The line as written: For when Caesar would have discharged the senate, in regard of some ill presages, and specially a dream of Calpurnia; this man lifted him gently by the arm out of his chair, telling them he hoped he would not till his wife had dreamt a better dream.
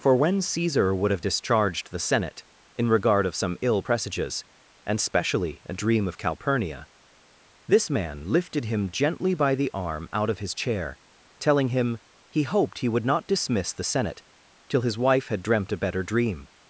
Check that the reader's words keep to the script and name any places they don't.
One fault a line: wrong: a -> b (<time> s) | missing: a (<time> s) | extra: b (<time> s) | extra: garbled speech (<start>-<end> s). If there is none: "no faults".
wrong: them -> him (11.7 s)
extra: dismiss the senate (13.3 s)